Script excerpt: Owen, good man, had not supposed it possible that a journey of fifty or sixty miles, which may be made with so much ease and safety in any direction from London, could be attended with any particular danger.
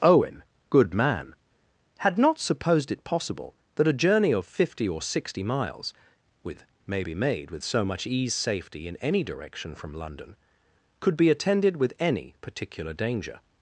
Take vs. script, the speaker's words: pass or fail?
fail